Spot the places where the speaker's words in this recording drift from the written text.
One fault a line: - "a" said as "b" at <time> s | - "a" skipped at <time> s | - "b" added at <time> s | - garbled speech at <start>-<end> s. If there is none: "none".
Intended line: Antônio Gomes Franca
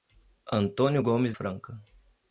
none